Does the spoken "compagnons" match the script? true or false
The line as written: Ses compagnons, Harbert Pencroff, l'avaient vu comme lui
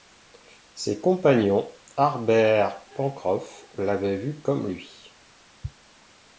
true